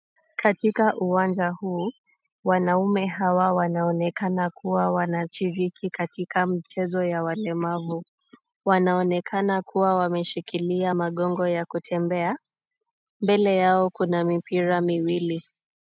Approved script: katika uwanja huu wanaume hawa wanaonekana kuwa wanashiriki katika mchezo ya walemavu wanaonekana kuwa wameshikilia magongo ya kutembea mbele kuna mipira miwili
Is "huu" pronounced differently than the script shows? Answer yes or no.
no